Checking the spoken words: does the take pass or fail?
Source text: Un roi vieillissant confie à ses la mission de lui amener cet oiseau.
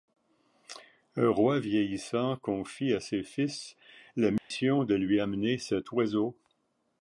fail